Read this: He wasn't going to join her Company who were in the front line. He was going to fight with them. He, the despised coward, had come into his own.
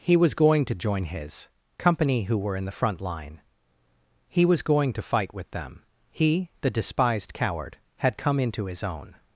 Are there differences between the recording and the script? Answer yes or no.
yes